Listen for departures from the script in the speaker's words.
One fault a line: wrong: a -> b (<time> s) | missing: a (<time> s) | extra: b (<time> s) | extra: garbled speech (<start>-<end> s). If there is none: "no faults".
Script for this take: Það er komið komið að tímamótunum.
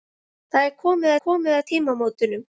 no faults